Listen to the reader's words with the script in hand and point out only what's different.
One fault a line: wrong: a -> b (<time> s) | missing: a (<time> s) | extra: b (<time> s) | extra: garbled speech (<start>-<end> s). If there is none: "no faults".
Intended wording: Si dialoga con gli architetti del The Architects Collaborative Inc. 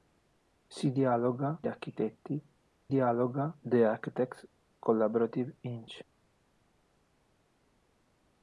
missing: con (1.6 s)
wrong: del -> dialoga (2.9 s)